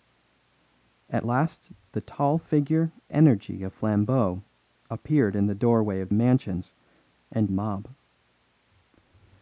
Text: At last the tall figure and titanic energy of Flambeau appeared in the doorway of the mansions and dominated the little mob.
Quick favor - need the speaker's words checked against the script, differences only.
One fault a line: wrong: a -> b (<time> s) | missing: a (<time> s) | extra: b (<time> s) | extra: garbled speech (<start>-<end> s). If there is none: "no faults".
missing: and titanic (2.9 s)
missing: the (6.1 s)
missing: dominated the little (7.5 s)